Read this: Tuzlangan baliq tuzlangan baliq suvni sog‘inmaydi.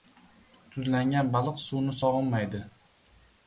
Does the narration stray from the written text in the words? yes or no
yes